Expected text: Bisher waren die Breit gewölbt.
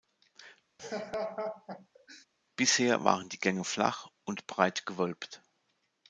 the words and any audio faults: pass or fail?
fail